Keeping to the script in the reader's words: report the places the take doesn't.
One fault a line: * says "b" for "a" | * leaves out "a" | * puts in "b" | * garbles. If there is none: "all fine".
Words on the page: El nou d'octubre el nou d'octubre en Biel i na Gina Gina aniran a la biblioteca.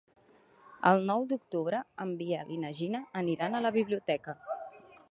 * leaves out "el nou d'octubre"
* leaves out "Gina"